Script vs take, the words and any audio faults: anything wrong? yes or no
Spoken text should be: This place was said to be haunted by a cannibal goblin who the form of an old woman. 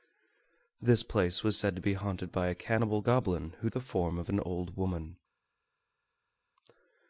no